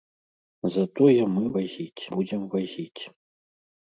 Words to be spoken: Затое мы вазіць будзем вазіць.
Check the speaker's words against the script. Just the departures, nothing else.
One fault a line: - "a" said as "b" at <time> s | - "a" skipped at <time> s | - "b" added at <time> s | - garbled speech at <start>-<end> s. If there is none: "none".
none